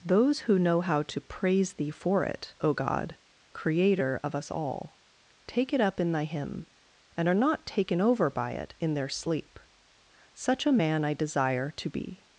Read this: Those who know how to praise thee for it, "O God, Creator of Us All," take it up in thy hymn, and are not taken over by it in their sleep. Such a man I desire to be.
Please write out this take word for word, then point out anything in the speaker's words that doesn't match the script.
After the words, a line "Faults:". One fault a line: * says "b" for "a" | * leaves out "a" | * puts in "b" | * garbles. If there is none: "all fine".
Those who know how to praise thee for it, "O God, Creator of Us All," take it up in thy hymn, and are not taken over by it in their sleep. Such a man I desire to be.
Faults:
all fine